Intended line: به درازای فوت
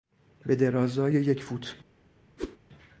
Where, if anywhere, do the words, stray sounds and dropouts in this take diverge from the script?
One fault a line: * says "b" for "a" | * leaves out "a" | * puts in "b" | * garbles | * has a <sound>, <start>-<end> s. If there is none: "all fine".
* puts in "یک"
* has a whoosh, 2.4-2.6 s